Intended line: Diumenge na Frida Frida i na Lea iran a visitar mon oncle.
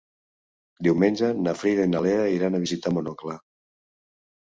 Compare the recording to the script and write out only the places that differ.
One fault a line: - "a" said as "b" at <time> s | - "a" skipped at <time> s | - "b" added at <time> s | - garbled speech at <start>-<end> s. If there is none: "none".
- "Frida" skipped at 1.9 s